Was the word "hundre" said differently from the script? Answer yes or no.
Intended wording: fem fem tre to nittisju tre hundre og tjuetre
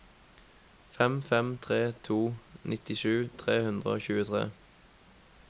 no